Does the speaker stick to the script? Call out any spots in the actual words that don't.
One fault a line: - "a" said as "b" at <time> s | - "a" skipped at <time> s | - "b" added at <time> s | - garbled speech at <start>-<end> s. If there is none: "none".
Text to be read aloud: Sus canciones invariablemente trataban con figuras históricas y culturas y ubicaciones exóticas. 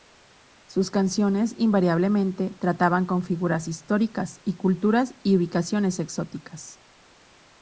none